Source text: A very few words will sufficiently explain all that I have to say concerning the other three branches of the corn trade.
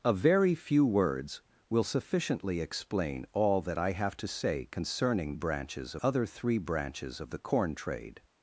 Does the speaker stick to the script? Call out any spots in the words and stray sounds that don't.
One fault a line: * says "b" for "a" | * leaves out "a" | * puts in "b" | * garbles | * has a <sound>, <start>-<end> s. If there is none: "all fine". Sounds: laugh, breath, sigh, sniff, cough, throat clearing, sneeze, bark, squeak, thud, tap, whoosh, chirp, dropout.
* says "branches" for "the"